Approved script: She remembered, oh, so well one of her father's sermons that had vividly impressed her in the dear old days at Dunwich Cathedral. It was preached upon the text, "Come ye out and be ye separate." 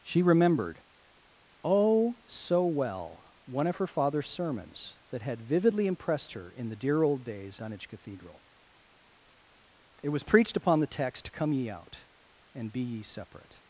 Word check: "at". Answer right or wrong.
wrong